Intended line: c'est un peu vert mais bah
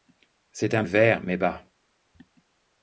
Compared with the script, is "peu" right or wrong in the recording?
wrong